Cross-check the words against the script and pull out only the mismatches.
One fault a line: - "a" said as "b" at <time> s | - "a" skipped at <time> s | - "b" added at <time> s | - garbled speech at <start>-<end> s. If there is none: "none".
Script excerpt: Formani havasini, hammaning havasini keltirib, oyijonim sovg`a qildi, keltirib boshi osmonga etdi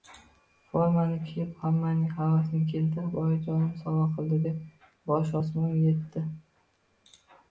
- "havasini" said as "kiyib" at 1.2 s
- "keltirib" said as "deb" at 4.4 s